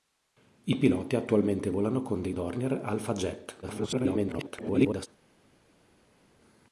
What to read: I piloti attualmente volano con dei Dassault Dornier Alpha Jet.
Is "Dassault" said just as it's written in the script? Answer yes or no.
no